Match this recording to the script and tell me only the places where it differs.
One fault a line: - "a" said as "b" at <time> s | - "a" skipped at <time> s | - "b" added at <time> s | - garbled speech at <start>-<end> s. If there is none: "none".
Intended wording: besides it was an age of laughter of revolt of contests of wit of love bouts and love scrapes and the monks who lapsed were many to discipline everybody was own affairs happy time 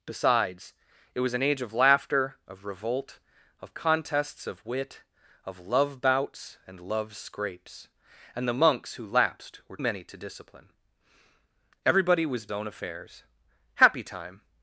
none